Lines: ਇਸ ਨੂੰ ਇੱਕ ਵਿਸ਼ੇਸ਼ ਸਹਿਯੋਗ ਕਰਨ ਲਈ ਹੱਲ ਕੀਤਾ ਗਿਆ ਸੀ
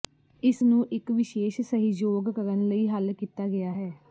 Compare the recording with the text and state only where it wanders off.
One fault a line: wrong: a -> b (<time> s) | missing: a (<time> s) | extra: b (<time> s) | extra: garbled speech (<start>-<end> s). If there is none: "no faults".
wrong: ਸੀ -> ਹੈ (3.7 s)